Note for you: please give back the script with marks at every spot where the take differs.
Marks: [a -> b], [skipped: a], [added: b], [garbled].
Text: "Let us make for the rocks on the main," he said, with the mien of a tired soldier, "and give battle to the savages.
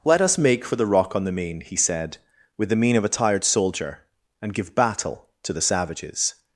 "Let us make for the [rocks -> rock] on the main," he said, with the mien of a tired soldier, "and give battle to the savages.